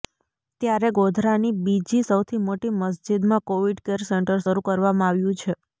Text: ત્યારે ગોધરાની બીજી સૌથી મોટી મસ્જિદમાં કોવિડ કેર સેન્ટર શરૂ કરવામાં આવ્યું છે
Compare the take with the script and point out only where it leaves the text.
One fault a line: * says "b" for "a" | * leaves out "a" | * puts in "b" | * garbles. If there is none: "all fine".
all fine